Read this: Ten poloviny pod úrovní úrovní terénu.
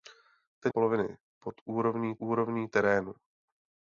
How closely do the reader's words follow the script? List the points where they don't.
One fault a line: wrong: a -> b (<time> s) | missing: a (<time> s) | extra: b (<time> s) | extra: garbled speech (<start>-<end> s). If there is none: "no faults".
no faults